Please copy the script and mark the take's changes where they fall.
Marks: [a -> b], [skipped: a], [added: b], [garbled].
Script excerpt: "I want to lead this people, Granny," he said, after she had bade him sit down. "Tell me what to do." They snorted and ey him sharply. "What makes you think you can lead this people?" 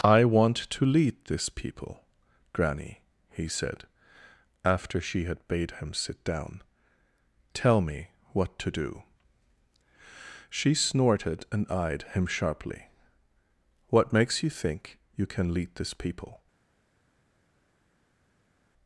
"I want to lead this people, Granny," he said, after she had bade him sit down. "Tell me what to do." [They -> She] snorted and [ey -> eyed] him sharply. "What makes you think you can lead this people?"